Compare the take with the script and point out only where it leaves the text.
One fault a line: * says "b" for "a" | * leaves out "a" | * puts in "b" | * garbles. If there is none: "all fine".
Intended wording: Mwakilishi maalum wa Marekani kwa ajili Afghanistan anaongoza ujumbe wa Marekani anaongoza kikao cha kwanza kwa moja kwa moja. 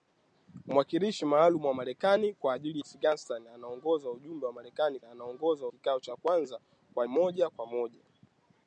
all fine